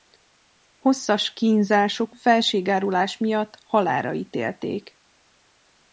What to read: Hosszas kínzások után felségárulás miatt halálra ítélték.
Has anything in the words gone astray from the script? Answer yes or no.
yes